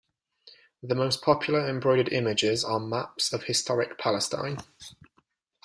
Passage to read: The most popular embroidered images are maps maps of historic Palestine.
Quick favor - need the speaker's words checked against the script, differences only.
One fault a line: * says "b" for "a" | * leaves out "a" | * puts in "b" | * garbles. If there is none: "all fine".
* leaves out "maps"